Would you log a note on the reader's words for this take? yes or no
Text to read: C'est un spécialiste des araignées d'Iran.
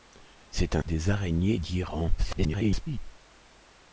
yes